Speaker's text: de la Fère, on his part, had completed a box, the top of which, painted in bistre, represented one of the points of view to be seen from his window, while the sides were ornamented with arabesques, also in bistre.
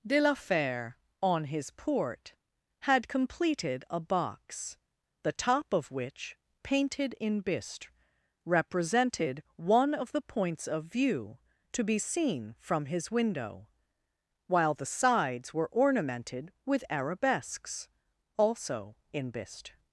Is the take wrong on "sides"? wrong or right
right